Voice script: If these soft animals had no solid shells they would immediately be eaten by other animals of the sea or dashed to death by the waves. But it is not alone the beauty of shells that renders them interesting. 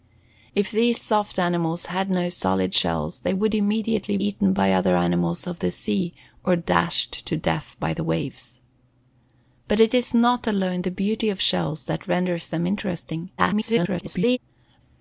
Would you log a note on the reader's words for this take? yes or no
yes